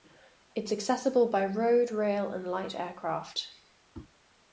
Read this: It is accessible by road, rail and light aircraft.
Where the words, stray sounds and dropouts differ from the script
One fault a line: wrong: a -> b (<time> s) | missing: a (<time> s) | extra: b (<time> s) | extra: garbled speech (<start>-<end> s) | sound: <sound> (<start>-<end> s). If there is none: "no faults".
no faults